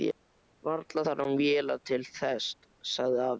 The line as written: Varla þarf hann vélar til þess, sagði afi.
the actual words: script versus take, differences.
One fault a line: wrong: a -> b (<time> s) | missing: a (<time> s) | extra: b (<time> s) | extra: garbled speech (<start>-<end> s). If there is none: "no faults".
no faults